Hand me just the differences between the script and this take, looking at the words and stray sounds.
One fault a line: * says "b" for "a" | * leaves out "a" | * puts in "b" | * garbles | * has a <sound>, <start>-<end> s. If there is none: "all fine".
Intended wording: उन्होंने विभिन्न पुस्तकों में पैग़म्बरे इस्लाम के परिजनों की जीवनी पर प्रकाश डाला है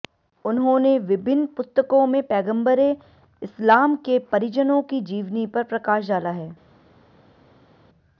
all fine